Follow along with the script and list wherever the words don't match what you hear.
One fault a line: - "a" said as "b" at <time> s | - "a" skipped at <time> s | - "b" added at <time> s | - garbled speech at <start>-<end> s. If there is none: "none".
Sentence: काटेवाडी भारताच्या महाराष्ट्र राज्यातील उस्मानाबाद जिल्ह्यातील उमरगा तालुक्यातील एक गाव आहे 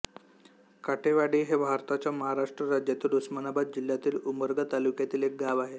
- "हे" added at 1.4 s